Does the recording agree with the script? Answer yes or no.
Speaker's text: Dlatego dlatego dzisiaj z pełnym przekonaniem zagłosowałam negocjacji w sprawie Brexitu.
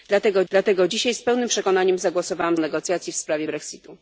yes